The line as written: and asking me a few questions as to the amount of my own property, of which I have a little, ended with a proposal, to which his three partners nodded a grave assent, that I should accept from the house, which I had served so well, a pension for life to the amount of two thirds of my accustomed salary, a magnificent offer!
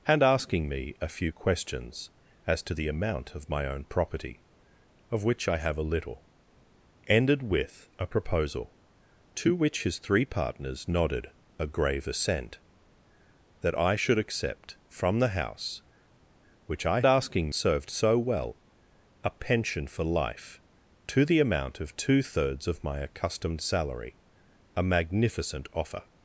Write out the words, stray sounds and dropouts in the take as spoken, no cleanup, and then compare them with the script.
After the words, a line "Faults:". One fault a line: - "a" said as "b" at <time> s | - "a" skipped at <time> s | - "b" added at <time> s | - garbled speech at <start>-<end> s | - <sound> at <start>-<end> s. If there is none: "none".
and asking me a few questions as to the amount of my own property, of which I have a little, ended with a proposal, to which his three partners nodded a grave assent, that I should accept from the house, which I asking served so well, a pension for life to the amount of two thirds of my accustomed salary, a magnificent offer!
Faults:
- "had" said as "asking" at 17.1 s